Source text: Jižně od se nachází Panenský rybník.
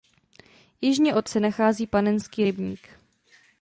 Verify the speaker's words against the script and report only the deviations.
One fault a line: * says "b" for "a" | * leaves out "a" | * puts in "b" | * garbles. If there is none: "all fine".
all fine